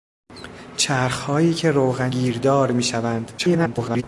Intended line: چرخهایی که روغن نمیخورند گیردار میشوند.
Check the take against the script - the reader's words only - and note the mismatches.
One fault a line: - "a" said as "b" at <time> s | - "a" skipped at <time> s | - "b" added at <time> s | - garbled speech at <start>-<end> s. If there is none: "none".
- "نمیخورند" skipped at 2.1 s
- garbled speech at 3.4-4.0 s